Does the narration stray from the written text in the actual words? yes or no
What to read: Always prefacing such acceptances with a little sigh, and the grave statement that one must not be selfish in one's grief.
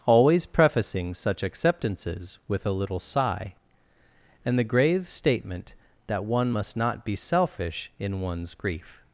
no